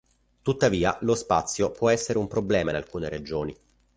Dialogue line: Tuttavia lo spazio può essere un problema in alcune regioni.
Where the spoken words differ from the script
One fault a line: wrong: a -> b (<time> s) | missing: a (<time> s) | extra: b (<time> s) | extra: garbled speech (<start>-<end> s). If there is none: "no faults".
no faults